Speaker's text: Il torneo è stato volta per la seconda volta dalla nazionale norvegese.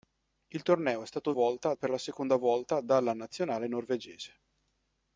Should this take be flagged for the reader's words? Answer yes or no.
no